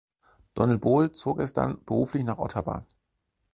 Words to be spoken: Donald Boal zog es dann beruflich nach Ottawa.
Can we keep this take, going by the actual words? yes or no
yes